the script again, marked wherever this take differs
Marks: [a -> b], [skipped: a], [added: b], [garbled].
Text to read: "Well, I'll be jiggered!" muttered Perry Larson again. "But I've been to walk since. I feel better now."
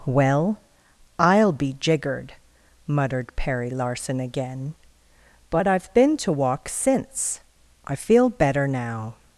"Well, I'll be jiggered!" muttered Perry Larson again. "But I've been to walk since. I feel better now."